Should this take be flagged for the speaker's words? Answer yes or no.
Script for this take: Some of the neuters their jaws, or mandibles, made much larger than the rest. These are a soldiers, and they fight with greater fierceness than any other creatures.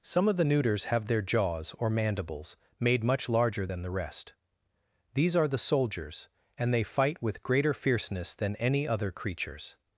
yes